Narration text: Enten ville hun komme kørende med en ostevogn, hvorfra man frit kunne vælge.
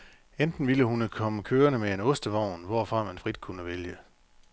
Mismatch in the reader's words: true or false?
false